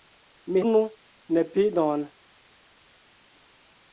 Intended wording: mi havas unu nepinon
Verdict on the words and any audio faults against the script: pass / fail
fail